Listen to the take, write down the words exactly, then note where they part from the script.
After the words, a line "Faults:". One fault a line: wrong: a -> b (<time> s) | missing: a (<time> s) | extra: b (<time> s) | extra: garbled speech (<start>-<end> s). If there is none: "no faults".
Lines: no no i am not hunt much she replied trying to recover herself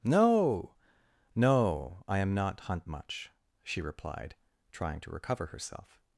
no no i am not hunt much she replied trying to recover herself
Faults:
no faults